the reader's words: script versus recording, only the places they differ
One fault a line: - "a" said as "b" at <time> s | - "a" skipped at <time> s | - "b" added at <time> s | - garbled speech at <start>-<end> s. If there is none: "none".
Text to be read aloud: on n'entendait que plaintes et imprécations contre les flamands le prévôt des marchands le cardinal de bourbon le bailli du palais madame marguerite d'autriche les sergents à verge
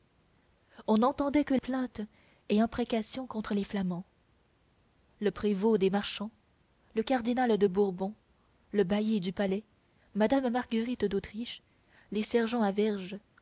none